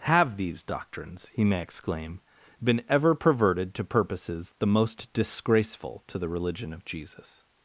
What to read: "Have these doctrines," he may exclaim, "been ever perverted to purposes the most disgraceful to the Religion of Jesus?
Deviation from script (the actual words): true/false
false